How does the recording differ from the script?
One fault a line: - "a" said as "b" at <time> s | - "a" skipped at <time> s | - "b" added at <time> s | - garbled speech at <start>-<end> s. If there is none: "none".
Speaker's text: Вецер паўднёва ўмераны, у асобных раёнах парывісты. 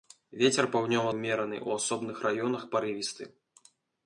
none